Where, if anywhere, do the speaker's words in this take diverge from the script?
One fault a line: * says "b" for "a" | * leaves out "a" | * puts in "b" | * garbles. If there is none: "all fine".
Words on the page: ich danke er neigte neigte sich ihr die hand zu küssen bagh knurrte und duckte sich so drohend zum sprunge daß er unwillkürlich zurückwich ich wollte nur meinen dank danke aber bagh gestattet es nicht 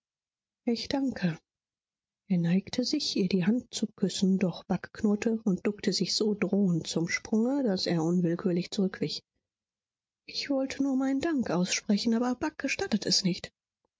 * leaves out "neigte"
* puts in "doch"
* says "aussprechen" for "danke"